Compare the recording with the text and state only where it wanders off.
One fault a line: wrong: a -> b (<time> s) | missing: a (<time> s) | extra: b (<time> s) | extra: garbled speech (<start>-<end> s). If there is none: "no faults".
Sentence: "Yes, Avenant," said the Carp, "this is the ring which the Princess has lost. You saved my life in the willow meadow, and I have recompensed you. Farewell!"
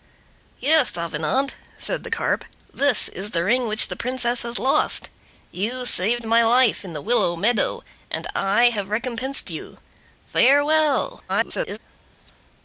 extra: garbled speech (11.3-11.8 s)